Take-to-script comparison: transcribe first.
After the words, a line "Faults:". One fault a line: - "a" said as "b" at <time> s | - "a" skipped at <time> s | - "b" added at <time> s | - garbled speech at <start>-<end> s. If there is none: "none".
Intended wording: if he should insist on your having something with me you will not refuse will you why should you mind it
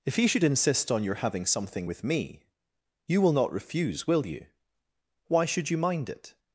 if he should insist on your having something with me you will not refuse will you why should you mind it
Faults:
none